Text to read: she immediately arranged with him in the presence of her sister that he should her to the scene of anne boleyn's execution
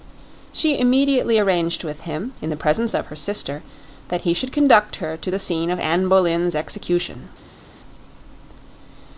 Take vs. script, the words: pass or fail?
fail